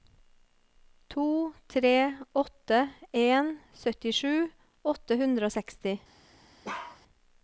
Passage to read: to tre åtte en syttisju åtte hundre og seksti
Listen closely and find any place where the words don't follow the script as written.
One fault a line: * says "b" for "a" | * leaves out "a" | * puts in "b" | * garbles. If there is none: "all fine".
all fine